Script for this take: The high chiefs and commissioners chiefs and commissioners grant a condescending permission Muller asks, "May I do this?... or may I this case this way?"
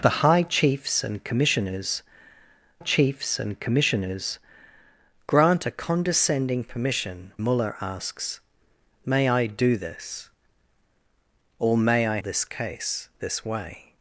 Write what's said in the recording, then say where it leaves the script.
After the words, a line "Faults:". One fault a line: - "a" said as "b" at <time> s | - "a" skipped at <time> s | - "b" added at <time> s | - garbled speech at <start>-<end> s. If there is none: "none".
The high chiefs and commissioners chiefs and commissioners grant a condescending permission Muller asks, "May I do this?... or may I this case this way?"
Faults:
none